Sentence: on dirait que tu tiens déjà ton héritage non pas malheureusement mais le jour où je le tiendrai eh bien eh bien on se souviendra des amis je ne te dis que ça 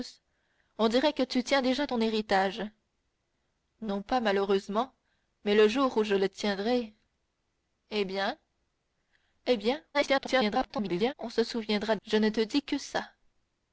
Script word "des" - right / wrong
wrong